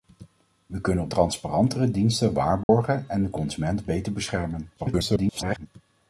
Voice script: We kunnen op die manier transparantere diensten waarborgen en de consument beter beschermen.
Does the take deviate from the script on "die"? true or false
true